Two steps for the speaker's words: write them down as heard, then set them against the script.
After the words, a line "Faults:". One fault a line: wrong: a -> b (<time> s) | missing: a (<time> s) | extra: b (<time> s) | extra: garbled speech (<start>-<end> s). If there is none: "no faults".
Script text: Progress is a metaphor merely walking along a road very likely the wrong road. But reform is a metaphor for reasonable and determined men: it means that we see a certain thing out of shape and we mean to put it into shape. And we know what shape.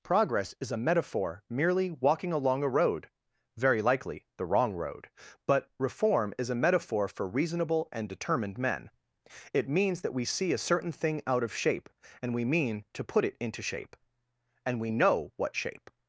Progress is a metaphor merely walking along a road very likely the wrong road. But reform is a metaphor for reasonable and determined men: it means that we see a certain thing out of shape and we mean to put it into shape. And we know what shape.
Faults:
no faults